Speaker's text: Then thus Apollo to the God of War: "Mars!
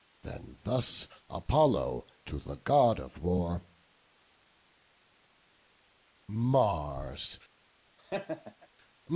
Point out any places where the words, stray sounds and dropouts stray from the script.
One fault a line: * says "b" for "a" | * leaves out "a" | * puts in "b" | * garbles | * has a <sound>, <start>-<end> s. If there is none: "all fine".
* has a laugh, 8.0-8.7 s